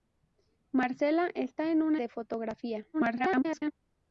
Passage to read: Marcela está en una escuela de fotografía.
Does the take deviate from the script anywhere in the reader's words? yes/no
yes